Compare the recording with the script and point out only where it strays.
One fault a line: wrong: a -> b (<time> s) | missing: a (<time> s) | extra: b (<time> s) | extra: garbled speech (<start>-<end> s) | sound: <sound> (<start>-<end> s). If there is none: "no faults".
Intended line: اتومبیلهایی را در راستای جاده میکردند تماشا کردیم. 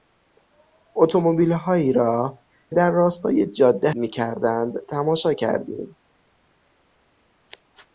no faults